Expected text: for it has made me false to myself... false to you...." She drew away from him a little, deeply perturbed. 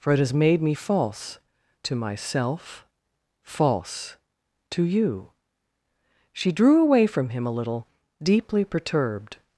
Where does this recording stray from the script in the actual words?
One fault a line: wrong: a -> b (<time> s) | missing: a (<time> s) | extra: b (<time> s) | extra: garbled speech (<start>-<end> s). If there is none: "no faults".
no faults